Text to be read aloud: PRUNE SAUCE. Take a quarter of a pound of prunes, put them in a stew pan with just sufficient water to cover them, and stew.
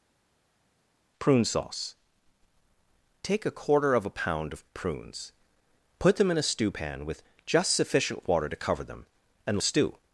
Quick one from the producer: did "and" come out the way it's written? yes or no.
yes